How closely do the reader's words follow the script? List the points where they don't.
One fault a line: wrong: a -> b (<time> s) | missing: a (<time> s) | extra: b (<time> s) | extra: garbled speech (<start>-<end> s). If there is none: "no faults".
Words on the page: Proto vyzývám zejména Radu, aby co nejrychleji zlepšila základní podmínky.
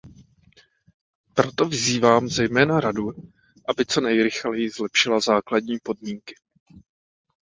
no faults